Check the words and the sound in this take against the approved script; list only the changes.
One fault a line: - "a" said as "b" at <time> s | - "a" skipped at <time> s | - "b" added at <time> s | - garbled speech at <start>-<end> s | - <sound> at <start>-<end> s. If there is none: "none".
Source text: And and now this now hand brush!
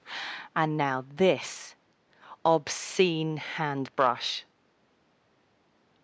- "and" skipped at 0.8 s
- "now" said as "obscene" at 2.4 s